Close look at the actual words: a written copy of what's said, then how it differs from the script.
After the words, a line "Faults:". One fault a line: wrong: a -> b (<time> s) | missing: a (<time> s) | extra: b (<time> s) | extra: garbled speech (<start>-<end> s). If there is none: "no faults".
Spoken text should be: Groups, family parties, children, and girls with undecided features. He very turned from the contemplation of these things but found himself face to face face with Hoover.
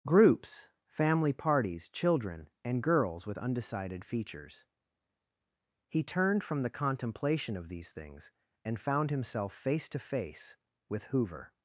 Groups, family parties, children, and girls with undecided features. He turned from the contemplation of these things and found himself face to face with Hoover.
Faults:
missing: very (6.0 s)
wrong: but -> and (8.6 s)
missing: face (10.6 s)